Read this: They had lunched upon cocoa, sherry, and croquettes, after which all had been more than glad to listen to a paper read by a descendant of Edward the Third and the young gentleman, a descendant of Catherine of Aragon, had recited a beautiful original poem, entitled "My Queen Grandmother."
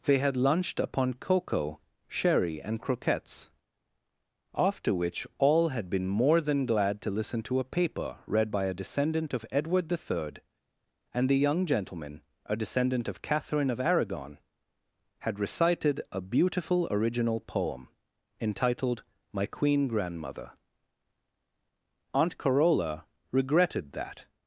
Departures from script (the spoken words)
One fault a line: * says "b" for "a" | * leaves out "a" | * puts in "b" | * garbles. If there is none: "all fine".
* puts in "Aunt Carola regretted that"